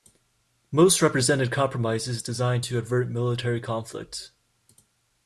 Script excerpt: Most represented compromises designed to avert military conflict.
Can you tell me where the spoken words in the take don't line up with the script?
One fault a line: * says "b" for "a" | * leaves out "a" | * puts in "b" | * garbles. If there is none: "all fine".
all fine